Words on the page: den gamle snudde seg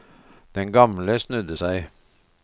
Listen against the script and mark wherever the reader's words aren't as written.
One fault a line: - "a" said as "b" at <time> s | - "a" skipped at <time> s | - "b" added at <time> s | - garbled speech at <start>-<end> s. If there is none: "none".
none